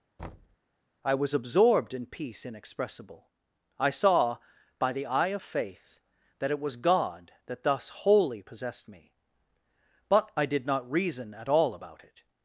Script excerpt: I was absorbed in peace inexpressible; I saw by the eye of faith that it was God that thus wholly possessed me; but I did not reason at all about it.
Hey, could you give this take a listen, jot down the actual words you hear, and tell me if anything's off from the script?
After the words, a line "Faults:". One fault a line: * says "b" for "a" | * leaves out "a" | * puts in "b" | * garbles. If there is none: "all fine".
I was absorbed in peace inexpressible; I saw by the eye of faith that it was God that thus wholly possessed me; but I did not reason at all about it.
Faults:
all fine